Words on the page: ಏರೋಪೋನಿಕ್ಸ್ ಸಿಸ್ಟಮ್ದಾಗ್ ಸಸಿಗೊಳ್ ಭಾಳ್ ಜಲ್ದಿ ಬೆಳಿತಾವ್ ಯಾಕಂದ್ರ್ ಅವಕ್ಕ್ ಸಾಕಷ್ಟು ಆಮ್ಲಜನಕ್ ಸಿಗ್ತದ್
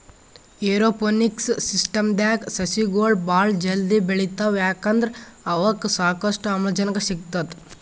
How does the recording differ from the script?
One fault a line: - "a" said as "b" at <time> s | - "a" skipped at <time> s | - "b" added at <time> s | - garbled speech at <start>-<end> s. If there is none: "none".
none